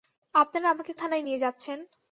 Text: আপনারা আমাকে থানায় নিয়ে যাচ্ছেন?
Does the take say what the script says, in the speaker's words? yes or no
yes